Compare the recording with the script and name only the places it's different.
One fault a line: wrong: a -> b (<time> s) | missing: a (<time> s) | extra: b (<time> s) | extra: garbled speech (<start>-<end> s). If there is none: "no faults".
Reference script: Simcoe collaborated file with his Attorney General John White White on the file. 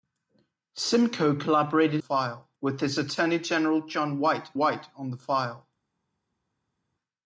no faults